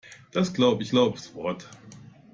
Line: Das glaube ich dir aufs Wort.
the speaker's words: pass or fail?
fail